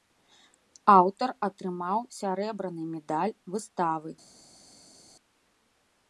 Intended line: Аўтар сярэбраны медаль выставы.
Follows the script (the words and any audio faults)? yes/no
no